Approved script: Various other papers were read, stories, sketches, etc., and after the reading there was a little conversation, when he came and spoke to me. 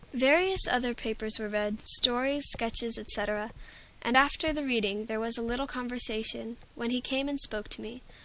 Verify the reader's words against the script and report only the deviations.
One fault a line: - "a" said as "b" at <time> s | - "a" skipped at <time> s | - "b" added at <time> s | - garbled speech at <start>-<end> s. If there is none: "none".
none